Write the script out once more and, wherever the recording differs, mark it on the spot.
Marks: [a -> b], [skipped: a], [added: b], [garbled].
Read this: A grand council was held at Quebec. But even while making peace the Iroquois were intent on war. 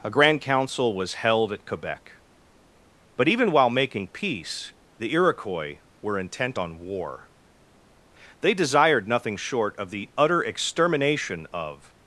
A grand council was held at Quebec. But even while making peace the Iroquois were intent on war. [added: They desired nothing short of the utter extermination of]